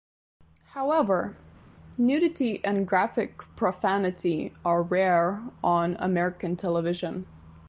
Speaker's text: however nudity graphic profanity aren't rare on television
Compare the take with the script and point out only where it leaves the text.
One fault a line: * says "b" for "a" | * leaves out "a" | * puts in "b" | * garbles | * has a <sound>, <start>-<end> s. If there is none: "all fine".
* puts in "and"
* says "are" for "aren't"
* puts in "american"